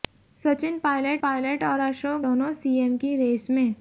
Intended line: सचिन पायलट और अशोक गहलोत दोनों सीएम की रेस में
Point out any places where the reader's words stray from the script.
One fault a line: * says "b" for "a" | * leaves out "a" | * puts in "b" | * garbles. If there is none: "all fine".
* puts in "पायलट"
* leaves out "गहलोत"